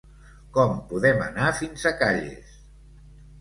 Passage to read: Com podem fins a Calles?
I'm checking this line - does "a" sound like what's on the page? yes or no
yes